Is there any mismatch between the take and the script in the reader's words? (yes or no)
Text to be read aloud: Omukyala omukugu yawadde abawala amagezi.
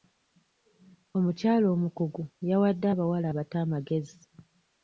yes